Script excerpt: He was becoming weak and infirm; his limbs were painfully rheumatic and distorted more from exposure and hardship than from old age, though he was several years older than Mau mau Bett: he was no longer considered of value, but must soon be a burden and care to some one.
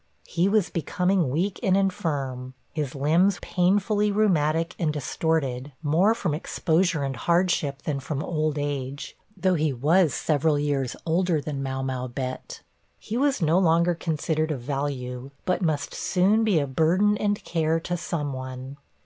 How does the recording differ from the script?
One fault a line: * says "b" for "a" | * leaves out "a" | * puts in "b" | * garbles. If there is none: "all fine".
* leaves out "were"